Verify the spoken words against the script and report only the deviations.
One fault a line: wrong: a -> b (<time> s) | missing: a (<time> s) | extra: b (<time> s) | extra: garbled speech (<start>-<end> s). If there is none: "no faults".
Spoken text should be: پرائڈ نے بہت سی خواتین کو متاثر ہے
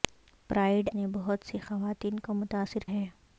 no faults